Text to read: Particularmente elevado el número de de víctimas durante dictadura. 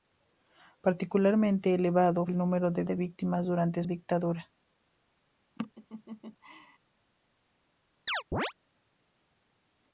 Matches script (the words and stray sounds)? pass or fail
fail